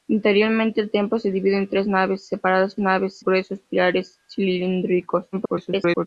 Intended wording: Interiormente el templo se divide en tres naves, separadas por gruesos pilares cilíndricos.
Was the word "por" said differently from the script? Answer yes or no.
yes